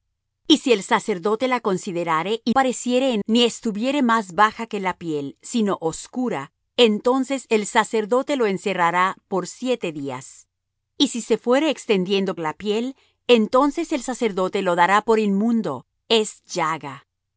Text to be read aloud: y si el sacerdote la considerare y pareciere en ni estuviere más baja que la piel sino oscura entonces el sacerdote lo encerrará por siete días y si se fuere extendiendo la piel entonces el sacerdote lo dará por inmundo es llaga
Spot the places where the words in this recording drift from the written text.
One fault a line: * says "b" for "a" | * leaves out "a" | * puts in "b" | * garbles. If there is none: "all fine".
all fine